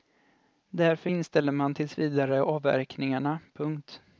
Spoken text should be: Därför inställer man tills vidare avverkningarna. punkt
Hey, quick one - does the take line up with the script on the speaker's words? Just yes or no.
yes